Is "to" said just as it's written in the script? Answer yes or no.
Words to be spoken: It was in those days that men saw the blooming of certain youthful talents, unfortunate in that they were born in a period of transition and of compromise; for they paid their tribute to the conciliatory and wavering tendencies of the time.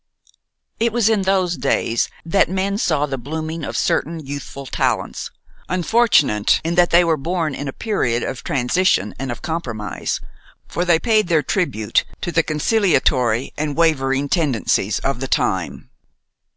yes